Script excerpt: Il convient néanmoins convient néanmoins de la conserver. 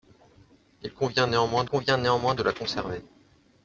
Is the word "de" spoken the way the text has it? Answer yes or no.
yes